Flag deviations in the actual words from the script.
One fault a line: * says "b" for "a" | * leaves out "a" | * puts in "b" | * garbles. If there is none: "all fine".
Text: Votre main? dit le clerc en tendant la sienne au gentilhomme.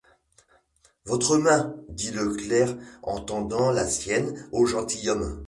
all fine